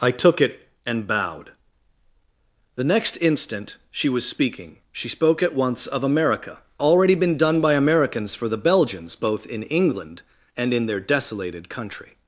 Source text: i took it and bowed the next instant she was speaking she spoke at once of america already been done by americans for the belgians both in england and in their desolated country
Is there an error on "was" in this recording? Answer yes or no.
no